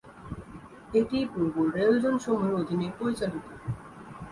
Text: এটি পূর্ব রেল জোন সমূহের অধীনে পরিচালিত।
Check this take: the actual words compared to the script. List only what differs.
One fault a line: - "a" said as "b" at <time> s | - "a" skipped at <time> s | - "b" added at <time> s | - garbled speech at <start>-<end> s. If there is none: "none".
none